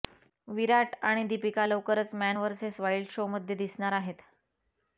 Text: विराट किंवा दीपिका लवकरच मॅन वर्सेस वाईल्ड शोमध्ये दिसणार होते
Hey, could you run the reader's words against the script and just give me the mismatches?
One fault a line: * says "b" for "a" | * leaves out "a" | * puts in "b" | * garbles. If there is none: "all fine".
* says "आणि" for "किंवा"
* says "आहेत" for "होते"